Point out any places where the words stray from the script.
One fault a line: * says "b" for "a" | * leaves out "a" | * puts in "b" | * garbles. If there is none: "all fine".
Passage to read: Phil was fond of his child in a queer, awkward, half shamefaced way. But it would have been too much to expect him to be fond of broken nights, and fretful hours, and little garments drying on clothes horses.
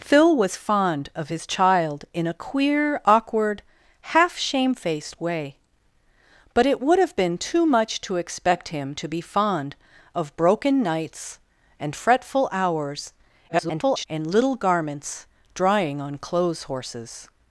* garbles